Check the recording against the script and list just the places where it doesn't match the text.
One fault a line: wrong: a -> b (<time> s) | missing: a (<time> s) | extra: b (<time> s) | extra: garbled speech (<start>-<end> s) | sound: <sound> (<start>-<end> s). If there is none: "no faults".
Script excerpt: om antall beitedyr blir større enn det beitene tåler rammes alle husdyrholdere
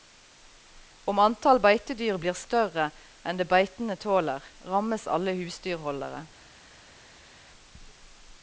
no faults